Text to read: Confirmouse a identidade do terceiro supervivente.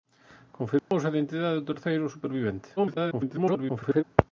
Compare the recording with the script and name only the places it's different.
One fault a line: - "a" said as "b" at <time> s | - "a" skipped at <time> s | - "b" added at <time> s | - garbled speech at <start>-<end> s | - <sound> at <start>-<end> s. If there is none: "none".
- dropout at 0.8-0.9 s
- garbled speech at 2.8-4.0 s